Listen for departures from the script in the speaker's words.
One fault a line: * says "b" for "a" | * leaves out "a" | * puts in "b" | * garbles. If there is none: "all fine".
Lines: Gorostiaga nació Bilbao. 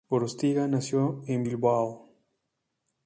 * puts in "en"